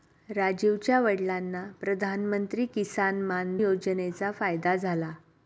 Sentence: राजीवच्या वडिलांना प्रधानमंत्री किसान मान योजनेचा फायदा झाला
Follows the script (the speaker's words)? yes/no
yes